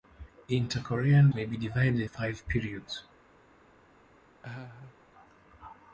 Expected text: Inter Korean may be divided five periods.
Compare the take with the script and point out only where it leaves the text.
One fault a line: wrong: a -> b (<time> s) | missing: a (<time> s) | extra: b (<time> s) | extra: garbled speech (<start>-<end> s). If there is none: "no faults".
no faults